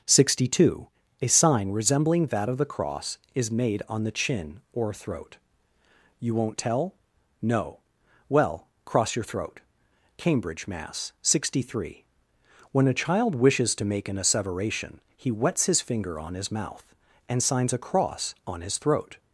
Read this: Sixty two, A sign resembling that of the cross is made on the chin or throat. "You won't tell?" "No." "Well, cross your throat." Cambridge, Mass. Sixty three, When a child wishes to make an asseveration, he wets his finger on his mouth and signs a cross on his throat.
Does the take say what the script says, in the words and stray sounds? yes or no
yes